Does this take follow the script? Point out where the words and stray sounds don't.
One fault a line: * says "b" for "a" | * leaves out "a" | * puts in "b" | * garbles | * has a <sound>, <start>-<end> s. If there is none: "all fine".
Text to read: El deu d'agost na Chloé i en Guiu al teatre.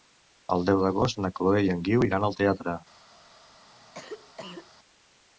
* puts in "iran"
* has a cough, 3.7-4.7 s